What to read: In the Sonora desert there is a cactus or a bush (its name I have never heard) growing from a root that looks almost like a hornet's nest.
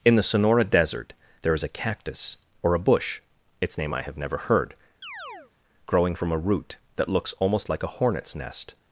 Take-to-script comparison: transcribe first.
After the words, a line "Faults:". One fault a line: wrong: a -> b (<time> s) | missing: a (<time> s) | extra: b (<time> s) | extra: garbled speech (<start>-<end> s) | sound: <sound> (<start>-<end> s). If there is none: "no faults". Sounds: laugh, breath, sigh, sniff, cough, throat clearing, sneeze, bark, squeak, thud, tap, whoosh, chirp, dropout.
In the Sonora desert there is a cactus or a bush (its name I have never heard) growing from a root that looks almost like a hornet's nest.
Faults:
sound: chirp (5.0-5.5 s)